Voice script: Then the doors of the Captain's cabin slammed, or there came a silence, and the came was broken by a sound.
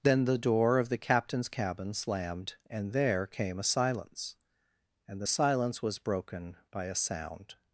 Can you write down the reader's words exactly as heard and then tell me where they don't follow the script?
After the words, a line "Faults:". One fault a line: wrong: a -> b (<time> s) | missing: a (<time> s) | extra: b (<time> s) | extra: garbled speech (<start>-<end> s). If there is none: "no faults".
Then the door of the Captain's cabin slammed, and there came a silence, and the silence was broken by a sound.
Faults:
wrong: doors -> door (0.4 s)
wrong: or -> and (2.7 s)
wrong: came -> silence (5.3 s)